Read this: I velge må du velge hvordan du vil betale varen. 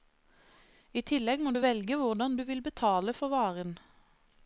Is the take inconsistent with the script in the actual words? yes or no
yes